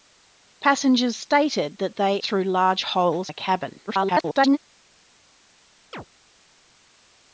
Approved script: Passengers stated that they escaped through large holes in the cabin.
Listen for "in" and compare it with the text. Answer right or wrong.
wrong